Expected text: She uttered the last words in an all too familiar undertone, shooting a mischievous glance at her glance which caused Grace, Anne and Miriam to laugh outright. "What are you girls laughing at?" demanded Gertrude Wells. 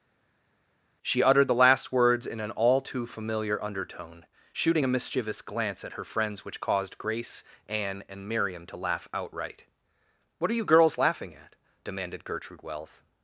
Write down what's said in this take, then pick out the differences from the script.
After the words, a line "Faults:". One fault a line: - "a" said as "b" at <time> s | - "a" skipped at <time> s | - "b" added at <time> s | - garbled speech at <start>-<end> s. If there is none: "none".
She uttered the last words in an all too familiar undertone, shooting a mischievous glance at her friends which caused Grace, Anne and Miriam to laugh outright. "What are you girls laughing at?" demanded Gertrude Wells.
Faults:
- "glance" said as "friends" at 6.0 s